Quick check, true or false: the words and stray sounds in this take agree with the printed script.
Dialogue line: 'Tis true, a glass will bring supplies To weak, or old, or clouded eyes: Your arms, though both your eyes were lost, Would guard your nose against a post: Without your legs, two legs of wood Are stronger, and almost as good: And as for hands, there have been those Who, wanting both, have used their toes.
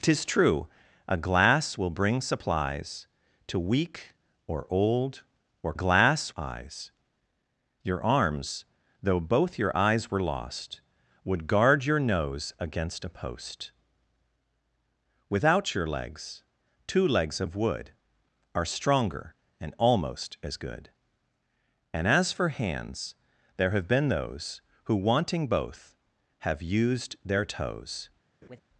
false